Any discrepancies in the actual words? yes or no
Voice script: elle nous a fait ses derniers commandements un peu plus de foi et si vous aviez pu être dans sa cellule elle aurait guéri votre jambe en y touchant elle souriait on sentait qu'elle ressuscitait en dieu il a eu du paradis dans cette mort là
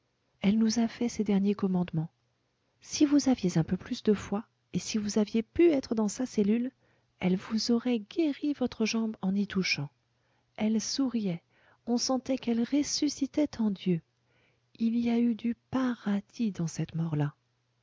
yes